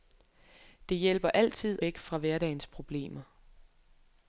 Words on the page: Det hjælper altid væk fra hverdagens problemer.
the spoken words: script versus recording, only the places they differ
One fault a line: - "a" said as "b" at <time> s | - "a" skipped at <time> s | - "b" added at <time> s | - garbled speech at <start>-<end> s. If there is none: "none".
none